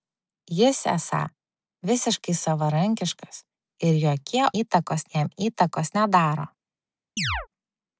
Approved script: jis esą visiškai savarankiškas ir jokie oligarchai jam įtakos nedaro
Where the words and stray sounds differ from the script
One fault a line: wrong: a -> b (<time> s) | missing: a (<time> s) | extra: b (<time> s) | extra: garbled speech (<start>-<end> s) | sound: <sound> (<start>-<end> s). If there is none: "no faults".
wrong: oligarchai -> įtakos (4.6 s)
sound: chirp (7.2-7.5 s)